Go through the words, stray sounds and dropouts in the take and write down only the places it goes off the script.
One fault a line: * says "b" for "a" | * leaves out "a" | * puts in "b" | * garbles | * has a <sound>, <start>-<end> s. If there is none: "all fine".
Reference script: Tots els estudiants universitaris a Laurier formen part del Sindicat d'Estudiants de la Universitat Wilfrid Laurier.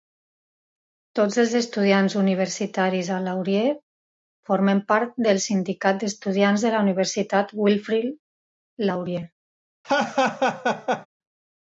* has a laugh, 9.8-11.1 s